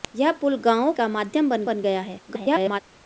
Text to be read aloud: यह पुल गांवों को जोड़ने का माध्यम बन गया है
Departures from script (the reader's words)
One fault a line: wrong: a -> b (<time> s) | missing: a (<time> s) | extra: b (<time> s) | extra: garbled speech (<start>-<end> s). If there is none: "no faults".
missing: को जोड़ने (0.9 s)
extra: बन (1.6 s)
extra: garbled speech (2.3-2.8 s)